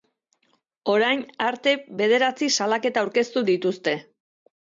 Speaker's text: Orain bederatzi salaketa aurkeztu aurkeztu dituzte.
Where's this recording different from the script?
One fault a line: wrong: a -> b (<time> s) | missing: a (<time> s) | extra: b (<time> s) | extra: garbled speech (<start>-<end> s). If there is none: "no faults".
extra: arte (1.5 s)
missing: aurkeztu (3.5 s)